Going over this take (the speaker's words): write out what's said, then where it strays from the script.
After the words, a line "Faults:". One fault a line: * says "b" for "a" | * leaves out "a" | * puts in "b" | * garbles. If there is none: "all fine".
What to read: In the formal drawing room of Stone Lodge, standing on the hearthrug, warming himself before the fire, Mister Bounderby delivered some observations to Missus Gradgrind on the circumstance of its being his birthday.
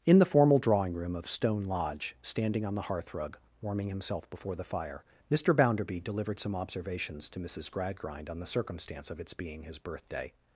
In the formal drawing room of Stone Lodge, standing on the hearthrug, warming himself before the fire, Mister Bounderby delivered some observations to Missus Gradgrind on the circumstance of its being his birthday.
Faults:
all fine